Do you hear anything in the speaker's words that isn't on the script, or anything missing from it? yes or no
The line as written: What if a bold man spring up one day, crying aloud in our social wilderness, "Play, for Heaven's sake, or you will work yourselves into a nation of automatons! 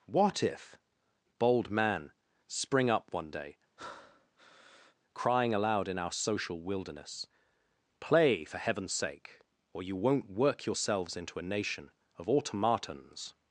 yes